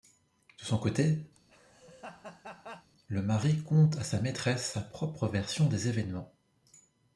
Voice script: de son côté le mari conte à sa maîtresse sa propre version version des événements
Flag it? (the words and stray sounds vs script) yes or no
yes